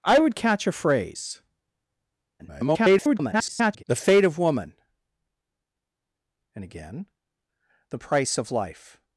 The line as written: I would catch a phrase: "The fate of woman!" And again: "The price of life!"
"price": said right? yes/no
yes